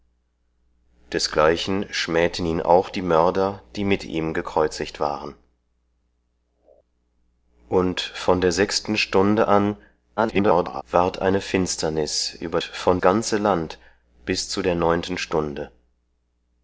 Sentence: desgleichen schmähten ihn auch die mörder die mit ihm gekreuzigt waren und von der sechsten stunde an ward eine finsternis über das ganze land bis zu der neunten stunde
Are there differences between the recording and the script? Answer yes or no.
yes